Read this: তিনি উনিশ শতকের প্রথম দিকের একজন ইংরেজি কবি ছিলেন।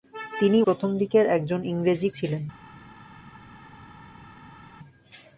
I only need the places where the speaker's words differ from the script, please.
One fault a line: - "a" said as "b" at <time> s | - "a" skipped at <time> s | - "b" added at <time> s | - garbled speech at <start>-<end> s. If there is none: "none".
- "উনিশ শতকের" skipped at 0.6 s
- "কবি" skipped at 2.1 s